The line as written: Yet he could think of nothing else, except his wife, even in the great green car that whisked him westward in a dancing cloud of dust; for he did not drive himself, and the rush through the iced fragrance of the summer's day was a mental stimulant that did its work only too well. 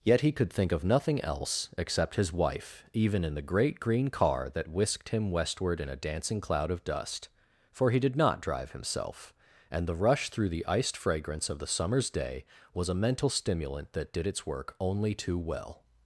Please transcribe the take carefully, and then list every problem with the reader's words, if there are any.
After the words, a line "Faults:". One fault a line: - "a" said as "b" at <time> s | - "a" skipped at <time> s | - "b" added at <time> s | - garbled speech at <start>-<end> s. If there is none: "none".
Yet he could think of nothing else, except his wife, even in the great green car that whisked him westward in a dancing cloud of dust; for he did not drive himself, and the rush through the iced fragrance of the summer's day was a mental stimulant that did its work only too well.
Faults:
none